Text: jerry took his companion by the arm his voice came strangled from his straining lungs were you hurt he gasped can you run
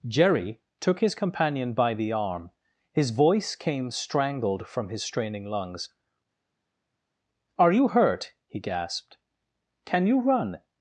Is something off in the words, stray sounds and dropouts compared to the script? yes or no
yes